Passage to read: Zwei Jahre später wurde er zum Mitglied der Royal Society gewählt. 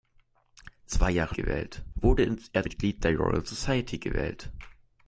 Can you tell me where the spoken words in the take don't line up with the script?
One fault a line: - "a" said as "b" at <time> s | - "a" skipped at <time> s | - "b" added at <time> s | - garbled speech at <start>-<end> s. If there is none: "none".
- "später" said as "gewählt" at 1.3 s
- "zum" skipped at 2.7 s